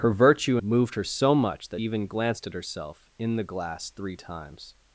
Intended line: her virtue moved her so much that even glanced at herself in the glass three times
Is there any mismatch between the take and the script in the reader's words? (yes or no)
no